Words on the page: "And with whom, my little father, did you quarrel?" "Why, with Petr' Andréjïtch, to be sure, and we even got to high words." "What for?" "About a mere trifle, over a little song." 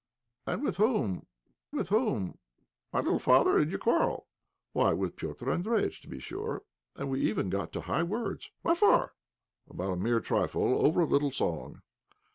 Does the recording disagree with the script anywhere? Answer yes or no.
yes